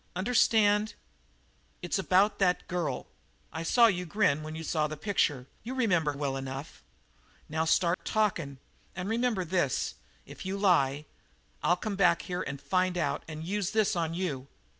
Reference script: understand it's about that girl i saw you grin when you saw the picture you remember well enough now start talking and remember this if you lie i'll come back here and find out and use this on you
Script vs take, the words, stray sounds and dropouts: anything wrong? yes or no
yes